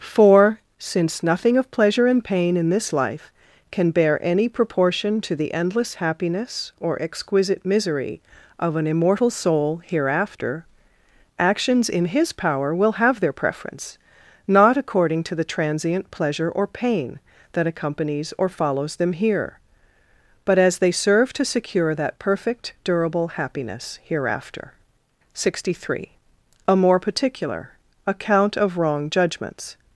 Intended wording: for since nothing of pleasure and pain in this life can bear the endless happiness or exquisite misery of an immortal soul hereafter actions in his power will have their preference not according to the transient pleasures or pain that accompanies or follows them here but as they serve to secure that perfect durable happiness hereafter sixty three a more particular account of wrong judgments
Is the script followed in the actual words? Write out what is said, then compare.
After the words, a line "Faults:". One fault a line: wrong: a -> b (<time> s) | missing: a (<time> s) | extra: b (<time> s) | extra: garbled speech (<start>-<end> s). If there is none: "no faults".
for since nothing of pleasure and pain in this life can bear any proportion to the endless happiness or exquisite misery of an immortal soul hereafter actions in his power will have their preference not according to the transient pleasure or pain that accompanies or follows them here but as they serve to secure that perfect durable happiness hereafter sixty three a more particular account of wrong judgments
Faults:
extra: any proportion to (4.2 s)
wrong: pleasures -> pleasure (16.1 s)